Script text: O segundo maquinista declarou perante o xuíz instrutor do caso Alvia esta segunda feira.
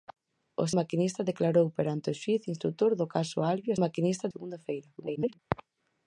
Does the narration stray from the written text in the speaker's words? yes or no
yes